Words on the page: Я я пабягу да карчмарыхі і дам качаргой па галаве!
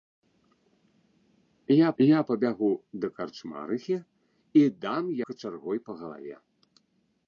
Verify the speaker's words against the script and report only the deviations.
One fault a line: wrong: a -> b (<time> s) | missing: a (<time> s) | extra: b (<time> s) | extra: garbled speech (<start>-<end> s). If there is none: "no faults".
no faults